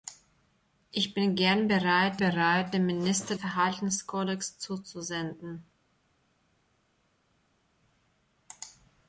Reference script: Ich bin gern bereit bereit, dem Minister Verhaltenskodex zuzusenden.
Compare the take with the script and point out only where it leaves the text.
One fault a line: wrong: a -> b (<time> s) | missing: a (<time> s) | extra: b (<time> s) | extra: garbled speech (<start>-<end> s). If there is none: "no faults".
no faults